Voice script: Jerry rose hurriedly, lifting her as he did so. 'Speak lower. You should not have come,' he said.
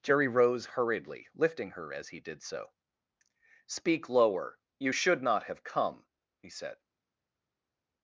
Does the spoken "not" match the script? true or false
true